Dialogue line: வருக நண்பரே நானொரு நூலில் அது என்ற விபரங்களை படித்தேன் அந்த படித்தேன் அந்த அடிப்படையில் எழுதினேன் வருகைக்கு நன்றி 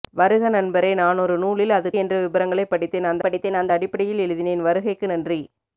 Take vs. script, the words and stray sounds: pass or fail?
pass